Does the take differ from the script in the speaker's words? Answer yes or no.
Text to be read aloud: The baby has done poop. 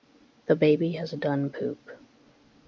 no